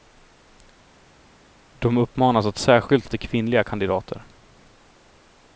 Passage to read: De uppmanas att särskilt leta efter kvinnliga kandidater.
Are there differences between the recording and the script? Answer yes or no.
yes